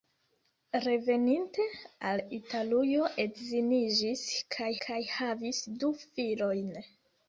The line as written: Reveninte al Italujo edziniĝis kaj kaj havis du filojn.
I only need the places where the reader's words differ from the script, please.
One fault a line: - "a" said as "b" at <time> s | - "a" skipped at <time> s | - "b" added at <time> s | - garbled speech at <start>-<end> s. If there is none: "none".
none